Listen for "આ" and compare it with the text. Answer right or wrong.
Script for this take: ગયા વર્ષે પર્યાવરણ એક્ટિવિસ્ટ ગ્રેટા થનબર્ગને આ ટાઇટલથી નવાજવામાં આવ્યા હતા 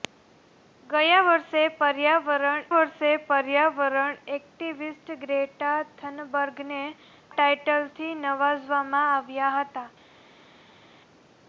wrong